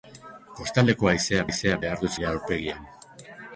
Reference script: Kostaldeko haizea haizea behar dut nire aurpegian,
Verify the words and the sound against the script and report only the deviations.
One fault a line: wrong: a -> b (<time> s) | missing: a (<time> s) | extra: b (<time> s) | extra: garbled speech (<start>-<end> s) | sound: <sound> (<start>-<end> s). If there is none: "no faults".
no faults